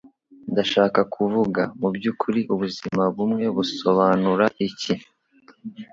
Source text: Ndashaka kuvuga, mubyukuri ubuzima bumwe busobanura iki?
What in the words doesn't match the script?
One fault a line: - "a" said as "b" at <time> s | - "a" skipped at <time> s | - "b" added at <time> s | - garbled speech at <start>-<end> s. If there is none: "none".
none